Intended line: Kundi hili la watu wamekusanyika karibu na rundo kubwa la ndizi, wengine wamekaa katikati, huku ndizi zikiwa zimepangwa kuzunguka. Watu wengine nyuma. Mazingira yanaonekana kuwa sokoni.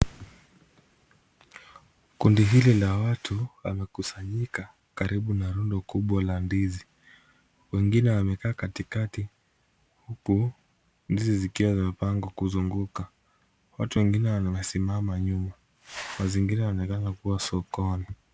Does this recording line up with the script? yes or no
no